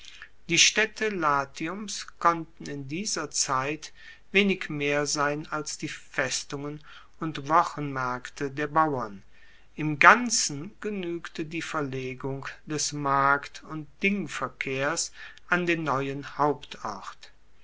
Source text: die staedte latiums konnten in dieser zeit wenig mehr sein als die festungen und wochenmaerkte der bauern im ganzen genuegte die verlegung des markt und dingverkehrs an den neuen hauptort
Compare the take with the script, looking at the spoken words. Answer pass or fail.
pass